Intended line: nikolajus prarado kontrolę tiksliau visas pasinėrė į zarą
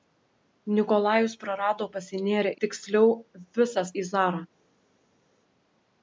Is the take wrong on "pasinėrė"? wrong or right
wrong